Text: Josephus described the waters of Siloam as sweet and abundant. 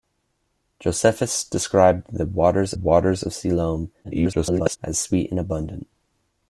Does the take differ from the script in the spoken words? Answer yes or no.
yes